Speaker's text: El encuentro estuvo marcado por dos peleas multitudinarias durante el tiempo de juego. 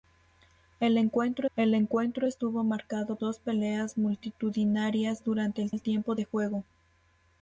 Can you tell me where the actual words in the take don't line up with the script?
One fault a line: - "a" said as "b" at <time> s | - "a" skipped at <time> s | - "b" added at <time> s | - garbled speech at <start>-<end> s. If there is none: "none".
- "el encuentro" added at 1.6 s
- "por" skipped at 3.2 s
- "el" added at 5.7 s